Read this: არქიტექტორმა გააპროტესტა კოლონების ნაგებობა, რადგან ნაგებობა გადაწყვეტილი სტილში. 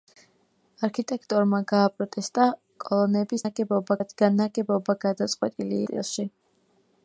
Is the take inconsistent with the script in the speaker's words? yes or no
no